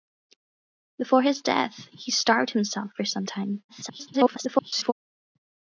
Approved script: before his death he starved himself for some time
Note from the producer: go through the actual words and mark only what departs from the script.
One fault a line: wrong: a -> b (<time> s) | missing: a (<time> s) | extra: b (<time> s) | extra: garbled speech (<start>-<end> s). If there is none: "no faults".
extra: garbled speech (3.7-4.9 s)